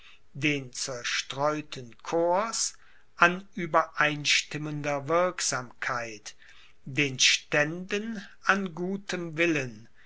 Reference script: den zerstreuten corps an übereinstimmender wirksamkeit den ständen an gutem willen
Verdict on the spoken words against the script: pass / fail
pass